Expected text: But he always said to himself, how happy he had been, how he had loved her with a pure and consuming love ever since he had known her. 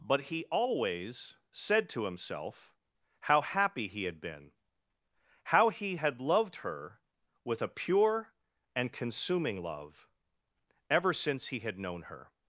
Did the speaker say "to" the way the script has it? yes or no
yes